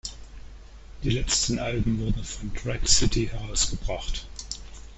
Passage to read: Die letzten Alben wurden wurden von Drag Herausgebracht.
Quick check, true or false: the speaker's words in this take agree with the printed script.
false